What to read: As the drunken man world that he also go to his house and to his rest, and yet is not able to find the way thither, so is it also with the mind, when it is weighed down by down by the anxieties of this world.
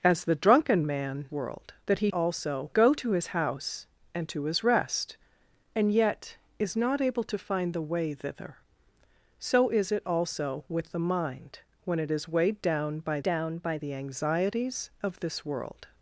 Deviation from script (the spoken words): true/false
false